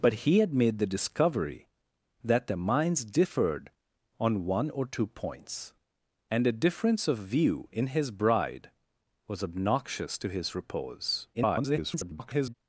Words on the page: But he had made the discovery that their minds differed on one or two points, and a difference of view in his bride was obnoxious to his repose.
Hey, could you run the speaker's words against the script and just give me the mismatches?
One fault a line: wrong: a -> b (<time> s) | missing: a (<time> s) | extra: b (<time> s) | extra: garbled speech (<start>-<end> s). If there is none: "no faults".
extra: garbled speech (11.3-12.6 s)